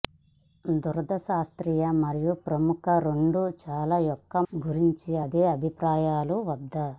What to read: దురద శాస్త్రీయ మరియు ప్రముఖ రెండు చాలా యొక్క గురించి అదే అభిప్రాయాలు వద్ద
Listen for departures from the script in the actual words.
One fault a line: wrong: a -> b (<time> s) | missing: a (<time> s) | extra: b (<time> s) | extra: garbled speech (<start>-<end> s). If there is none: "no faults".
no faults